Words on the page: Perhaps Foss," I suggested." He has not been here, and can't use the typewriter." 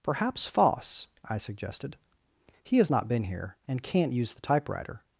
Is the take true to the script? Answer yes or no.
yes